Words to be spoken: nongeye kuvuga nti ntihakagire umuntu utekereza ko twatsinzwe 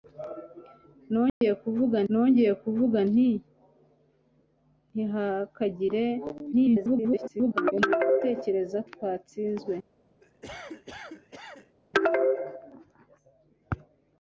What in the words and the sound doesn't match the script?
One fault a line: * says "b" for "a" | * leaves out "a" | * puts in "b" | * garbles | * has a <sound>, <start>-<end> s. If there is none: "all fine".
* has a dropout, 1.3-1.4 s
* puts in "nongeye kuvuga"
* garbles
* leaves out "ko"
* has a cough, 10.2-11.8 s